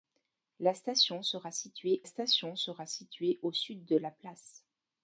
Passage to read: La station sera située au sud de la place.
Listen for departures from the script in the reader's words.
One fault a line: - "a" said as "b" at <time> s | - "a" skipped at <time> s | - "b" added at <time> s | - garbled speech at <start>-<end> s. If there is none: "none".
- "station sera située" added at 2.0 s